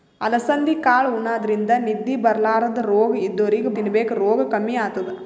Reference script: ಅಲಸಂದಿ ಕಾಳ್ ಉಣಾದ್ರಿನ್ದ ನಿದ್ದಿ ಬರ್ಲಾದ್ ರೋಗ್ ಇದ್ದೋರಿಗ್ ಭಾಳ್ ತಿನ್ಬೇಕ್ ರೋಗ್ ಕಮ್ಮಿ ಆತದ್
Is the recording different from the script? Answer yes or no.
yes